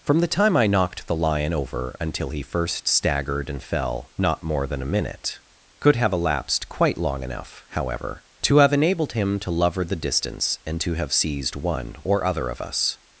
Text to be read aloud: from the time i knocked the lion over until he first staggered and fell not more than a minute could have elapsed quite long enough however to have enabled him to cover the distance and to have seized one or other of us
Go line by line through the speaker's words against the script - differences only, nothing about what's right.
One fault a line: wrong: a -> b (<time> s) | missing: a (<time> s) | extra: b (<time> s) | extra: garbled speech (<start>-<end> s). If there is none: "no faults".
wrong: cover -> lover (9.5 s)